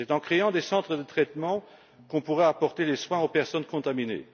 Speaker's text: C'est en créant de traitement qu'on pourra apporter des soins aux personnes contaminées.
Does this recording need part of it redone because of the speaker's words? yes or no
yes